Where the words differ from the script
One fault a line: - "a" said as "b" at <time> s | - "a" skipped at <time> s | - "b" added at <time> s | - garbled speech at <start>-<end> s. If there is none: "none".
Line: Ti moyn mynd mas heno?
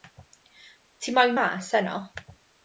- "mynd" skipped at 1.4 s